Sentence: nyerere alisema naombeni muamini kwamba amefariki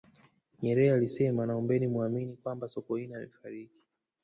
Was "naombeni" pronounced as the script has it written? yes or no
yes